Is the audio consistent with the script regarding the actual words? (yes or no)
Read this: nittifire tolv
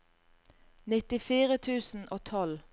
no